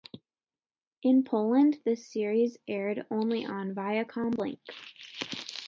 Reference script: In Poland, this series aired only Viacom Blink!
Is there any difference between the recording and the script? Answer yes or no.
yes